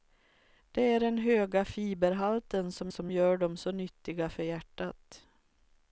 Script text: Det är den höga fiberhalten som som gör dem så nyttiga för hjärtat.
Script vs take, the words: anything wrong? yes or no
no